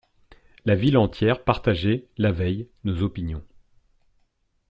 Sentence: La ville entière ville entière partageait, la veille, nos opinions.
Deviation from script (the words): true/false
true